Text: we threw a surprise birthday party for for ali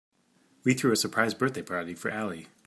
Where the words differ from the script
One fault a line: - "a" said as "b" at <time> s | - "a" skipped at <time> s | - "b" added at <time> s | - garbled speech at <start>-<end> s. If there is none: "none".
- "for" skipped at 2.1 s